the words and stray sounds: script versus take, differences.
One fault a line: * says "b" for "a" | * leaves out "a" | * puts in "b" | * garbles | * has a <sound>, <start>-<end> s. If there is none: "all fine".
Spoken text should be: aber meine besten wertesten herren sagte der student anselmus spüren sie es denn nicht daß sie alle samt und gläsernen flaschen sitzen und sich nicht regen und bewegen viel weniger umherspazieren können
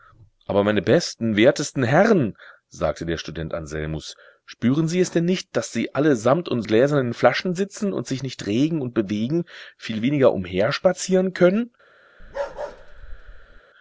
* has a bark, 12.2-13.6 s